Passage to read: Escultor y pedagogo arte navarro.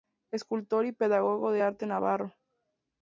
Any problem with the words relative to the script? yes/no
yes